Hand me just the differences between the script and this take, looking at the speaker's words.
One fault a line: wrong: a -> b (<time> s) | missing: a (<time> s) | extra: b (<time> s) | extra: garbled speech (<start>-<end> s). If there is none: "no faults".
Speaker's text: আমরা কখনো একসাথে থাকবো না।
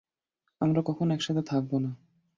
no faults